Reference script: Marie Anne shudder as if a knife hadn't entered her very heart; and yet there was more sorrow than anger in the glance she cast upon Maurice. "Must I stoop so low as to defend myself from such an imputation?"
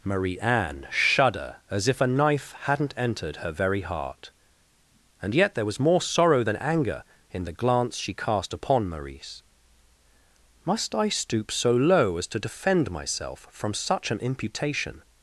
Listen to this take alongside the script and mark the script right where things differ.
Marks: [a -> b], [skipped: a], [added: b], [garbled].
Marie Anne shudder as if a knife hadn't entered her very heart; and yet there was more sorrow than anger in the glance she cast upon Maurice. "Must I stoop so low as to defend myself from such an imputation?"